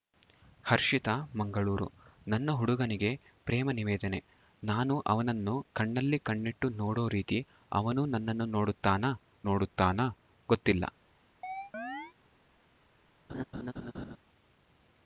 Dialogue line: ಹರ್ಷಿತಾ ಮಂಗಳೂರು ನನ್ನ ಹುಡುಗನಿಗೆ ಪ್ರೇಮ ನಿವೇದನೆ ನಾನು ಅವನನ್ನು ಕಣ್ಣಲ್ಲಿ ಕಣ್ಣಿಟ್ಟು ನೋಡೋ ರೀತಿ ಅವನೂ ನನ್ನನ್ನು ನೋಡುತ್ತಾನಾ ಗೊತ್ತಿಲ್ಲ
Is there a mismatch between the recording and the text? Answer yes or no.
yes